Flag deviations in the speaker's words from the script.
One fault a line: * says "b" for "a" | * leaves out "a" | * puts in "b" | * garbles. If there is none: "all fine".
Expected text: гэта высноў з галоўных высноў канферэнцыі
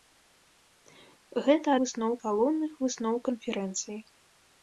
all fine